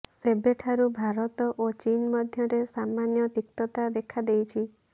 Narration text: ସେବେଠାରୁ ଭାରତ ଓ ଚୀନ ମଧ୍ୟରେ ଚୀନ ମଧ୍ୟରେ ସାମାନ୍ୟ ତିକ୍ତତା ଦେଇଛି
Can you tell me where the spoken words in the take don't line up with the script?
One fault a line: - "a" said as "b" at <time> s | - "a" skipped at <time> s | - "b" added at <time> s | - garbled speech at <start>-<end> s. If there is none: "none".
- "ଚୀନ ମଧ୍ୟରେ" skipped at 2.6 s
- "ଦେଖା" added at 4.0 s